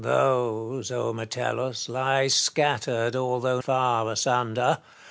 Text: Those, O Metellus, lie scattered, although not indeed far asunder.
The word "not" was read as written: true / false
false